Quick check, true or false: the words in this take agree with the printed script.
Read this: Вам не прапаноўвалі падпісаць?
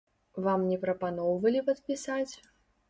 true